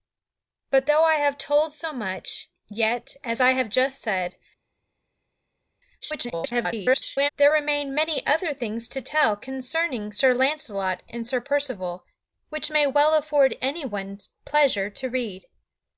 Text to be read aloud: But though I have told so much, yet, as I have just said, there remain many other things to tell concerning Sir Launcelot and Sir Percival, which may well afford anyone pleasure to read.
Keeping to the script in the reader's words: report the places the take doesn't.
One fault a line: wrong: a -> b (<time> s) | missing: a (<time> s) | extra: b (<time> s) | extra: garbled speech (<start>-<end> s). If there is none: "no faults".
extra: garbled speech (6.0-7.3 s)